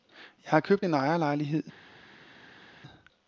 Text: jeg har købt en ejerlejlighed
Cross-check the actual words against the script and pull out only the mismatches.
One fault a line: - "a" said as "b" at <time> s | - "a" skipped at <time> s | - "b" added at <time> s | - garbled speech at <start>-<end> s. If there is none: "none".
none